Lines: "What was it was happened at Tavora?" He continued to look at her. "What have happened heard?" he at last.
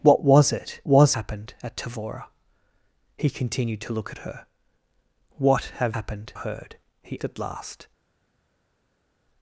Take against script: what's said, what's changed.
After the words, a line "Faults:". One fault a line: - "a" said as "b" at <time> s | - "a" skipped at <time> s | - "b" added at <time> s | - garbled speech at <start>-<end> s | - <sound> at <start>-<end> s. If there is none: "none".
"What was it was happened at Tavora?" He continued to look at her. "What have happened heard?" he at last.
Faults:
none